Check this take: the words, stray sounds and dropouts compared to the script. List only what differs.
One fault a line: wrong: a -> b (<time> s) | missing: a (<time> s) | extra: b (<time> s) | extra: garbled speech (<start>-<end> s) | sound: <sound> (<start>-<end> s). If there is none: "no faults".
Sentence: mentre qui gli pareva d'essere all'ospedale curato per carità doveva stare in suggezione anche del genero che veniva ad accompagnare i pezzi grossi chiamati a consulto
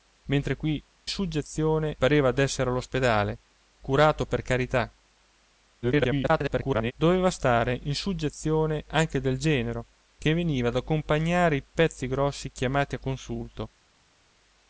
wrong: gli -> suggezione (1.1 s)
extra: garbled speech (5.8-6.9 s)